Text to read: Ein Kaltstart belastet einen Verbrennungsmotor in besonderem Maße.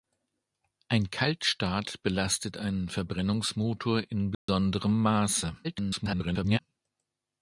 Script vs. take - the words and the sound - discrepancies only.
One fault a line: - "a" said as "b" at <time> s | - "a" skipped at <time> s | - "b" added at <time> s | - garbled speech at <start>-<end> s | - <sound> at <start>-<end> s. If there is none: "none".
- dropout at 4.3-4.5 s
- garbled speech at 5.6-6.6 s